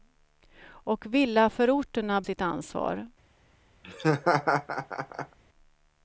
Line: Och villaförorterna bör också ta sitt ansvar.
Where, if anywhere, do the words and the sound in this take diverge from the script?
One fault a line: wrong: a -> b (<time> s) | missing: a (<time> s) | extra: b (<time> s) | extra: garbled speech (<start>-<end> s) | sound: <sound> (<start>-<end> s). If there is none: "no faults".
missing: bör också ta (2.2 s)
sound: laugh (3.8-5.4 s)